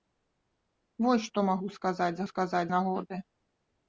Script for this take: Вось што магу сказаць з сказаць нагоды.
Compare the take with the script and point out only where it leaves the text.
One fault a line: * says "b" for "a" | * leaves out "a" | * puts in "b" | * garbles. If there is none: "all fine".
all fine